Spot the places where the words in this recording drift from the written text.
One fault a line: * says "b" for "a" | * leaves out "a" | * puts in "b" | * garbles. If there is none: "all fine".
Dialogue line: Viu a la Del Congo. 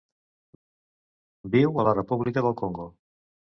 * puts in "República"